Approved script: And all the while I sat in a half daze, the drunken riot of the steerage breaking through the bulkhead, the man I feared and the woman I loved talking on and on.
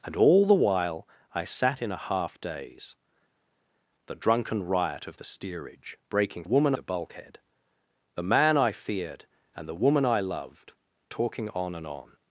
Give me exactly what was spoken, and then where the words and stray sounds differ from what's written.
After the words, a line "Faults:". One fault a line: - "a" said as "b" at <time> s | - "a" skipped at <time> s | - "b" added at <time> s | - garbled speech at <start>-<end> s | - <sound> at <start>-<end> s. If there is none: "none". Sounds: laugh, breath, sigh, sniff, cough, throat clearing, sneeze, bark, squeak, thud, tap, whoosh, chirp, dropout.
And all the while I sat in a half daze, the drunken riot of the steerage breaking woman the bulkhead, the man I feared and the woman I loved talking on and on.
Faults:
- "through" said as "woman" at 6.4 s